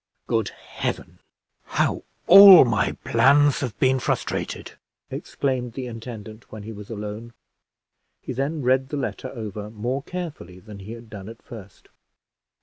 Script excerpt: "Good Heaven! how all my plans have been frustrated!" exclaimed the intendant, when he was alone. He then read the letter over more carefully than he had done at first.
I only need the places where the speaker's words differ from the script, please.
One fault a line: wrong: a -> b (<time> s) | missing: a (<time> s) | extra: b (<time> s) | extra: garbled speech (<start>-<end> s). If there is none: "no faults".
no faults